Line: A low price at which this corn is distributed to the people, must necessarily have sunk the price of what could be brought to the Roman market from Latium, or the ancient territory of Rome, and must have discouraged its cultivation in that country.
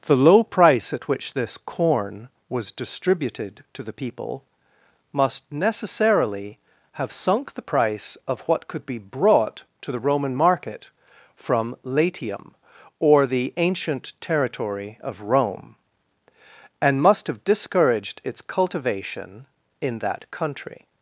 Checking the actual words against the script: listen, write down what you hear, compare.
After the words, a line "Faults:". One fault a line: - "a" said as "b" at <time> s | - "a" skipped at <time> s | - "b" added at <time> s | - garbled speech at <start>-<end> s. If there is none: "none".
The low price at which this corn was distributed to the people, must necessarily have sunk the price of what could be brought to the Roman market from Latium, or the ancient territory of Rome, and must have discouraged its cultivation in that country.
Faults:
- "A" said as "The" at 0.1 s
- "is" said as "was" at 2.5 s